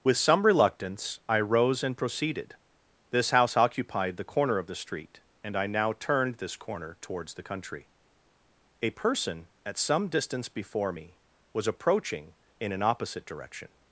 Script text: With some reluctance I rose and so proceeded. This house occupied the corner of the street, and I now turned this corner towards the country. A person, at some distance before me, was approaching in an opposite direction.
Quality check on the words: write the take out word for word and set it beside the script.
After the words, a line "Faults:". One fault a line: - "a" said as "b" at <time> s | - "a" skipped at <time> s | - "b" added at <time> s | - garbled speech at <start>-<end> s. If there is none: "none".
With some reluctance I rose and proceeded. This house occupied the corner of the street, and I now turned this corner towards the country. A person, at some distance before me, was approaching in an opposite direction.
Faults:
- "so" skipped at 1.9 s